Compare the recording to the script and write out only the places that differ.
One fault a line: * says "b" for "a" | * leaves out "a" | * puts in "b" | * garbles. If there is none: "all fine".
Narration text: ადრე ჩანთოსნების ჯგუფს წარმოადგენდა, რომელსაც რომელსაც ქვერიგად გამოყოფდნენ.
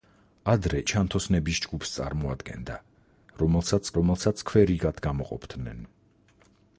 all fine